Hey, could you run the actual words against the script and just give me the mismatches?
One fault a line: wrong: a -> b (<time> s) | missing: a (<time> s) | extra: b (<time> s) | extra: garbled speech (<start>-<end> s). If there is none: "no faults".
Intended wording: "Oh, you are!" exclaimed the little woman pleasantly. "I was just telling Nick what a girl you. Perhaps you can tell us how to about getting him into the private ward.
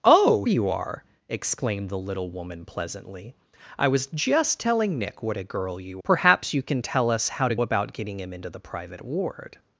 no faults